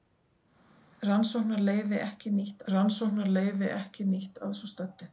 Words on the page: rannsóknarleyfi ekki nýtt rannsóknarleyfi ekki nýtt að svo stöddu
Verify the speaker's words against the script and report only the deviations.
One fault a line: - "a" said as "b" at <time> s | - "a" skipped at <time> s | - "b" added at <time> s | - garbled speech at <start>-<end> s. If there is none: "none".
none